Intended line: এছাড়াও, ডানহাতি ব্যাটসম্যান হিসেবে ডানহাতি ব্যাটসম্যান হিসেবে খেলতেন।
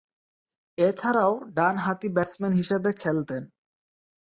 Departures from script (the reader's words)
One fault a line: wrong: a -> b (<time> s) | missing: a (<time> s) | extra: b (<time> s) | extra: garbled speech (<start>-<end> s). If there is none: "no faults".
missing: ডানহাতি ব্যাটসম্যান হিসেবে (2.9 s)